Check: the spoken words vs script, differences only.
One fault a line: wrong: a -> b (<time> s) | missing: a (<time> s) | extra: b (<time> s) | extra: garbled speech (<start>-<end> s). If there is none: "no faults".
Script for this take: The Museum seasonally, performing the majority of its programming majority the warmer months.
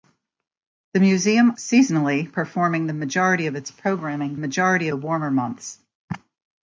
no faults